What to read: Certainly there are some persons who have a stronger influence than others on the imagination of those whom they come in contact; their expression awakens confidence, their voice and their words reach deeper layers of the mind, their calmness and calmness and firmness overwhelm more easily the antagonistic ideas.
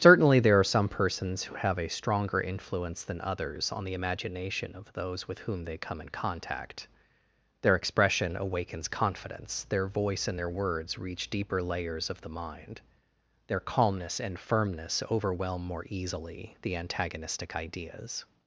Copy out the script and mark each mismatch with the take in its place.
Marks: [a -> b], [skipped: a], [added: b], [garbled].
Certainly there are some persons who have a stronger influence than others on the imagination of those [added: with] whom they come in contact; their expression awakens confidence, their voice and their words reach deeper layers of the mind, their calmness and [skipped: calmness and] firmness overwhelm more easily the antagonistic ideas.